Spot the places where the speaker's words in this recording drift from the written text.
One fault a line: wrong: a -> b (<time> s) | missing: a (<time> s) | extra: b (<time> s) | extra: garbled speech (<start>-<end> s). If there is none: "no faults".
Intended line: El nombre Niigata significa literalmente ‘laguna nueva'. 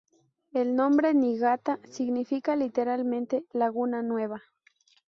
no faults